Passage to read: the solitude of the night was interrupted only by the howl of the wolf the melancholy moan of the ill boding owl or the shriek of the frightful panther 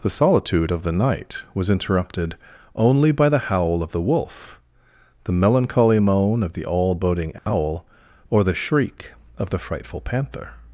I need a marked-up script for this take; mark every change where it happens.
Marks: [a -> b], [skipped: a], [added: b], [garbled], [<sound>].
the solitude of the night was interrupted only by the howl of the wolf the melancholy moan of the [ill -> all] boding owl [dropout] or the shriek of the frightful panther